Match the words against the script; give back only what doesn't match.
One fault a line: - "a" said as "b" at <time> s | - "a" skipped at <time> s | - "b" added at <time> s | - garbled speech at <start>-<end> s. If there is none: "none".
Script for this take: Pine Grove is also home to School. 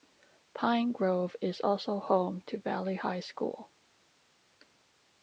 - "Valley High" added at 2.6 s